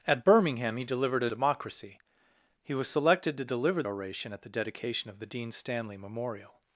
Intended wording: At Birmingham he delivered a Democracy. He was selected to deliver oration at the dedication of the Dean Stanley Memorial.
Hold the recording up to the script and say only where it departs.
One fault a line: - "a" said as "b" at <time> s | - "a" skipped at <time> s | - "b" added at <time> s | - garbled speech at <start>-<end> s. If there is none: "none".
none